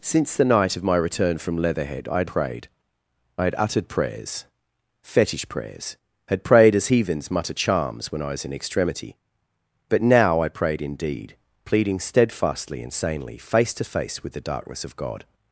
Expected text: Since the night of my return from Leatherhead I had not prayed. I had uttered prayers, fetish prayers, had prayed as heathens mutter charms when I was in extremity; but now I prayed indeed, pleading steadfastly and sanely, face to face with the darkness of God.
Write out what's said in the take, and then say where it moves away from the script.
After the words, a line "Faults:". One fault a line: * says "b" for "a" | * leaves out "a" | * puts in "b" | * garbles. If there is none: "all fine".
Since the night of my return from Leatherhead I had prayed. I had uttered prayers, fetish prayers, had prayed as heathens mutter charms when I was in extremity; but now I prayed indeed, pleading steadfastly and sanely, face to face with the darkness of God.
Faults:
* leaves out "not"